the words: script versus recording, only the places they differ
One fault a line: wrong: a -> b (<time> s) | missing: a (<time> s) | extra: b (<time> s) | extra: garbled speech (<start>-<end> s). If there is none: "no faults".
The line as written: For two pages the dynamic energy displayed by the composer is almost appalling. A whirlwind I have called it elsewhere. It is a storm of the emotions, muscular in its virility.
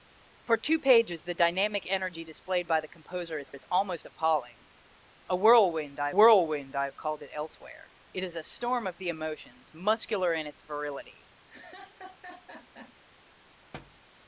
extra: is (3.5 s)
extra: whirlwind I (6.1 s)